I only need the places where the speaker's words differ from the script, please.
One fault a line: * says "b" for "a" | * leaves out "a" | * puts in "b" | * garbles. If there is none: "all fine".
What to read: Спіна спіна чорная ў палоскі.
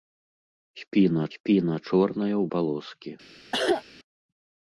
all fine